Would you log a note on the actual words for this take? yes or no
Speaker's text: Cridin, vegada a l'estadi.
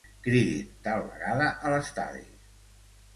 yes